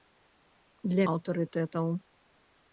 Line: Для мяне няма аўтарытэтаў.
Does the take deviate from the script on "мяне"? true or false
true